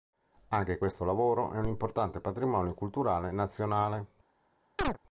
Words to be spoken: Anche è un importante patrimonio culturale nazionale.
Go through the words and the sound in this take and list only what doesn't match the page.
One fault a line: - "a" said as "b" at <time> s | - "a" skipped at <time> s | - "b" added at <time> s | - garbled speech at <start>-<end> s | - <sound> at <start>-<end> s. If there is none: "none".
- "questo lavoro" added at 0.8 s
- chirp at 4.8-5.0 s